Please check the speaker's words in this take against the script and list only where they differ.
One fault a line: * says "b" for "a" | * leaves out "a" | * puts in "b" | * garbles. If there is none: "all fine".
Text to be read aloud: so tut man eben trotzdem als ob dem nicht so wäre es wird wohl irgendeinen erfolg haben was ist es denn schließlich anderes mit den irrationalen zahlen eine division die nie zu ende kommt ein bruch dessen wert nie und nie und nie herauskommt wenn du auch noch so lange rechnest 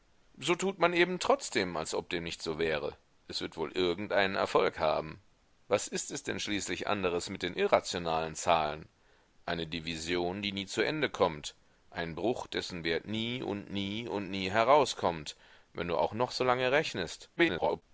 * garbles